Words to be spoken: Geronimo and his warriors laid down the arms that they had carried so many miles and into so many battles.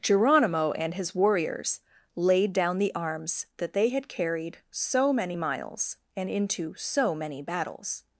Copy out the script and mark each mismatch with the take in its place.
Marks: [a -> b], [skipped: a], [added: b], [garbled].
Geronimo and his warriors laid down the arms that they had carried so many miles and into so many battles.